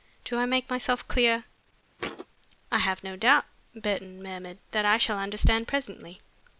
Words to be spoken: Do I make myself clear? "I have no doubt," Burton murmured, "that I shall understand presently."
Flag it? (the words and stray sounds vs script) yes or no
yes